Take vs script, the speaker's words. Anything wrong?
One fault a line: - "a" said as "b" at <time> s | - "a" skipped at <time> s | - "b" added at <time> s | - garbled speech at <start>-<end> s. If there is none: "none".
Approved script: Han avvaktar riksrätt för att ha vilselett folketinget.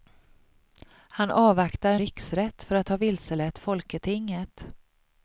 none